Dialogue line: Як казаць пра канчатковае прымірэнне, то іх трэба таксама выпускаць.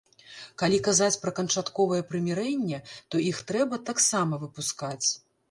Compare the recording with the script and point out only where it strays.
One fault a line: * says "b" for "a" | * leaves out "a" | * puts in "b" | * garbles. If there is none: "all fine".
* says "Калі" for "Як"